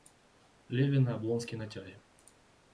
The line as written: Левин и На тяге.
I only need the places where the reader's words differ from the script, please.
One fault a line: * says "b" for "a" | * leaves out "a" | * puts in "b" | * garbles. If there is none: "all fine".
* puts in "Облонский"